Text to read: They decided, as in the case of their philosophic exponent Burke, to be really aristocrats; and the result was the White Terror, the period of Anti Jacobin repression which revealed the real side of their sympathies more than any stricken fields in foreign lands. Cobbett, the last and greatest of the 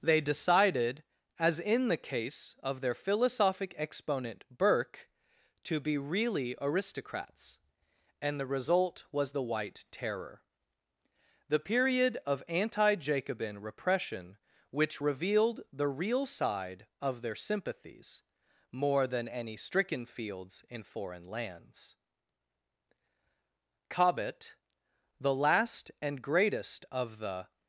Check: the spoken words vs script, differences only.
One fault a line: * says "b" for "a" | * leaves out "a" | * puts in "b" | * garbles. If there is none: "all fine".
all fine